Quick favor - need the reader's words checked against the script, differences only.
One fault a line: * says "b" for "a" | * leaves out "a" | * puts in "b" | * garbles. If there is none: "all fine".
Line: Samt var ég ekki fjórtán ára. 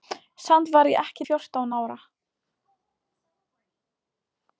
all fine